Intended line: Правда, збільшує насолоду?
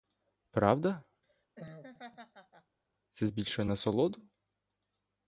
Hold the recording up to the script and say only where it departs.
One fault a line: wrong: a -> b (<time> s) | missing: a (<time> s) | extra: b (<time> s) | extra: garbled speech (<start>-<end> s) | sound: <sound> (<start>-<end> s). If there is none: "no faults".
sound: laugh (1.2-2.8 s)
extra: це (3.1 s)